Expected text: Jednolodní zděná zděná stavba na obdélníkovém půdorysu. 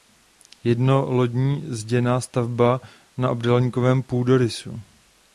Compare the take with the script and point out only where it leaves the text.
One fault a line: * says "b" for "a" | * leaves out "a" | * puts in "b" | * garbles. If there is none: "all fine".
* leaves out "zděná"